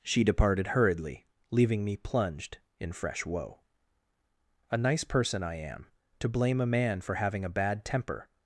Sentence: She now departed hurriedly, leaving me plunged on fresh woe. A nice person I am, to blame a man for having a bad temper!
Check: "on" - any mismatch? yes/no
yes